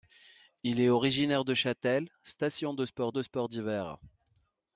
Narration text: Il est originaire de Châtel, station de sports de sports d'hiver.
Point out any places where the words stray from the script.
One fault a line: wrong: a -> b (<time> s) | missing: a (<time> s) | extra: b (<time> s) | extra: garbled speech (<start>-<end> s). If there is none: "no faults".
no faults